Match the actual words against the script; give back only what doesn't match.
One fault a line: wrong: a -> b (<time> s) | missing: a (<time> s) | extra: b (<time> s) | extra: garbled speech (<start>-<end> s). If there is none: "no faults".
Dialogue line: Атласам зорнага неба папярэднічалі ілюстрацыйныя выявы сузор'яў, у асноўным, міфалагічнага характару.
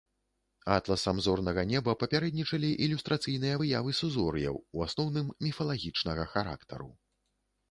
no faults